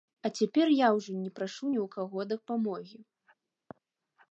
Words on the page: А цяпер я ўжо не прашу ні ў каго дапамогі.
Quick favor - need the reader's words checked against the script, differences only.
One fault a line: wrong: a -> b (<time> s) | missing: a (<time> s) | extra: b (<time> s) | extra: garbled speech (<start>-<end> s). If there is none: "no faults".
no faults